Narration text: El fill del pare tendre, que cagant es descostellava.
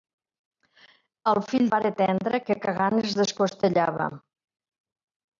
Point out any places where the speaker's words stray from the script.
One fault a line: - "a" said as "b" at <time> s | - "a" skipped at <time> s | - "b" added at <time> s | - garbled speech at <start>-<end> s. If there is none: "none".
- "del" skipped at 1.7 s